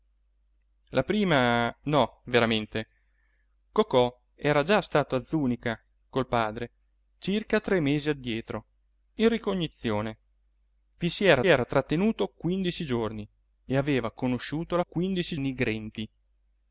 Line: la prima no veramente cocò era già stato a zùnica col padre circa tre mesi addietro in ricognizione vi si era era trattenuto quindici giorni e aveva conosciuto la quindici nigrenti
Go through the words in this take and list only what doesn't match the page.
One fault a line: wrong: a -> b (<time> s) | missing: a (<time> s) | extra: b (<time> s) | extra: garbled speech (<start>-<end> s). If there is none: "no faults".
no faults